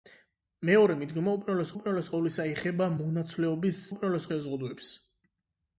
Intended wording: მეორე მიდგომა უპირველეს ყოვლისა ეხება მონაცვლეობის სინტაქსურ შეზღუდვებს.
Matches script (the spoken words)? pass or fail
fail